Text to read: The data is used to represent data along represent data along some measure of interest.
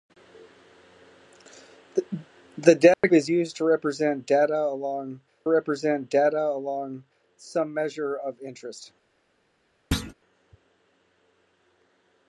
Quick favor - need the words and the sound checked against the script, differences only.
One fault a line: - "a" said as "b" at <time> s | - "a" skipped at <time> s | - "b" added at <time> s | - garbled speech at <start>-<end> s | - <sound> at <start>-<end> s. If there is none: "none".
- dropout at 2.9-3.0 s
- thud at 9.9-10.1 s